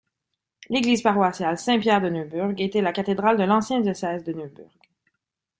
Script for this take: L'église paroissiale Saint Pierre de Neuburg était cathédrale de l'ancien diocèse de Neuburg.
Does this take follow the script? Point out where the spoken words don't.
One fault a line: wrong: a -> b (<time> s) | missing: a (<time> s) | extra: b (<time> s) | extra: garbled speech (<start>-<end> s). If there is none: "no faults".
extra: la (2.8 s)